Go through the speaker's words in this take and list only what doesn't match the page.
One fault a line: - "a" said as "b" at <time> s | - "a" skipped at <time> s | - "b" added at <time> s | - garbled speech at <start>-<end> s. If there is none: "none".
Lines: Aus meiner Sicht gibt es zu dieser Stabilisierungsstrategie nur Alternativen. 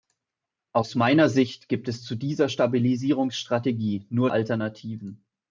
none